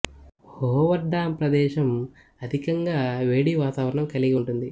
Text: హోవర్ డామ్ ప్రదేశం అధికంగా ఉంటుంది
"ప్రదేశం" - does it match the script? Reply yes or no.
yes